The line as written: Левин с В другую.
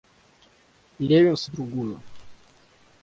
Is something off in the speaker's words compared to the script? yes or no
no